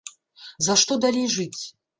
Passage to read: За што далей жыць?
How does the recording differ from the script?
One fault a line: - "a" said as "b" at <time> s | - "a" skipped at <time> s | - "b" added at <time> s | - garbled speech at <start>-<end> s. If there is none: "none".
none